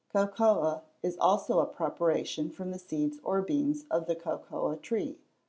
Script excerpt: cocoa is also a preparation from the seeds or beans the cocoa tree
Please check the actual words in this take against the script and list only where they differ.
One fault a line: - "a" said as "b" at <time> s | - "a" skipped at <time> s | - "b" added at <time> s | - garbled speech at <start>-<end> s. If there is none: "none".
- "of" added at 3.9 s